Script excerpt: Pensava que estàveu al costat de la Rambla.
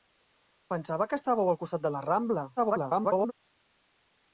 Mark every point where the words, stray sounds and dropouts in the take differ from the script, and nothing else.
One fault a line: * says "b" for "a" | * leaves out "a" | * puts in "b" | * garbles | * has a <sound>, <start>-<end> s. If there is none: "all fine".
* garbles